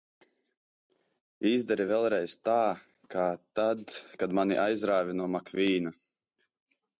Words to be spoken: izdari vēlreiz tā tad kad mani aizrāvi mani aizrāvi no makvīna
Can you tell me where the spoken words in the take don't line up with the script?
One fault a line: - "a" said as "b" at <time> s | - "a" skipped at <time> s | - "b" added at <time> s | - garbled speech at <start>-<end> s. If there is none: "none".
- "kā" added at 3.2 s
- "mani aizrāvi" skipped at 5.2 s